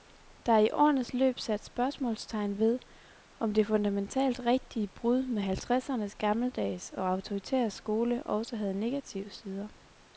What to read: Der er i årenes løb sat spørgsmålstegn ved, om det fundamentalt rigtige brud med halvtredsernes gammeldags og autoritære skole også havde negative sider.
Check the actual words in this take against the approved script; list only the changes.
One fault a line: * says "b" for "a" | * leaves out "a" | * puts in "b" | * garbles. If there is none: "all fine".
all fine